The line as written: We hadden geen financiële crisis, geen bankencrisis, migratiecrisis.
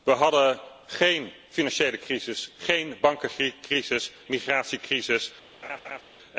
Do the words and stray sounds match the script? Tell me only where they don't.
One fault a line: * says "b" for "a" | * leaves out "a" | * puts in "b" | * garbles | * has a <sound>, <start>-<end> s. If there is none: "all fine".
* has a laugh, 5.6-6.0 s